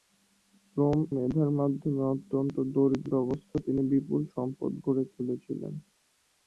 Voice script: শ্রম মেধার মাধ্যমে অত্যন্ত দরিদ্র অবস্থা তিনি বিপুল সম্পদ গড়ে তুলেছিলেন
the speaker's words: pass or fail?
pass